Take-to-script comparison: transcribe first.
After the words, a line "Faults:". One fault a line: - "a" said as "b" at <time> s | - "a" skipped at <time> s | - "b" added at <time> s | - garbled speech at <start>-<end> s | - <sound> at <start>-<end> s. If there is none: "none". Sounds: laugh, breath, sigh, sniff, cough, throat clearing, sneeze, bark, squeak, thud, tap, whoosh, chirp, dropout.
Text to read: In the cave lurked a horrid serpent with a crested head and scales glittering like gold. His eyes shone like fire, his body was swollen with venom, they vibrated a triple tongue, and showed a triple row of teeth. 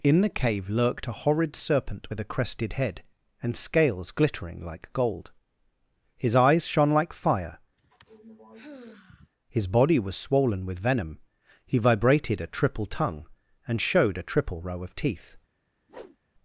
In the cave lurked a horrid serpent with a crested head and scales glittering like gold. His eyes shone like fire, his body was swollen with venom, he vibrated a triple tongue, and showed a triple row of teeth.
Faults:
- sigh at 7.8-9.3 s
- "they" said as "he" at 11.7 s
- whoosh at 15.9-16.2 s